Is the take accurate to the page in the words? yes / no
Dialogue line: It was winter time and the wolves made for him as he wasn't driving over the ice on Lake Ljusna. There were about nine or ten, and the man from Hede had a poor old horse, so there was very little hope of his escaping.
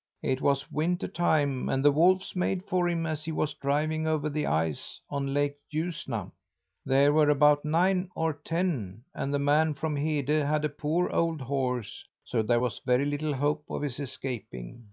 no